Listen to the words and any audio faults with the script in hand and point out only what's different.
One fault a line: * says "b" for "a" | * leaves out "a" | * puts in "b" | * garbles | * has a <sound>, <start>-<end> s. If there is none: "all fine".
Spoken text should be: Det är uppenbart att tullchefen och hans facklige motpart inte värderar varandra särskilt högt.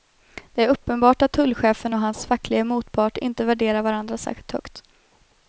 all fine